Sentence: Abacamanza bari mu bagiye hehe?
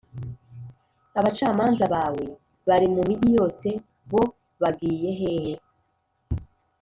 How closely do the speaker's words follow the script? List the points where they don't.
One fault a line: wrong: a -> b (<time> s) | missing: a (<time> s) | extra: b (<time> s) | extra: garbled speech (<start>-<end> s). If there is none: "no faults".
extra: bawe (1.9 s)
extra: migi yose bo (3.1 s)